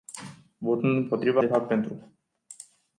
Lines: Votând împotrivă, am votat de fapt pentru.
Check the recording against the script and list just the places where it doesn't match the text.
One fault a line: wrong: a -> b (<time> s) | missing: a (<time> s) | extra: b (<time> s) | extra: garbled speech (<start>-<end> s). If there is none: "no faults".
missing: am votat (1.4 s)